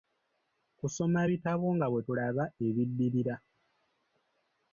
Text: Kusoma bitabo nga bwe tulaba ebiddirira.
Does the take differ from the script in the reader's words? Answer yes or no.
no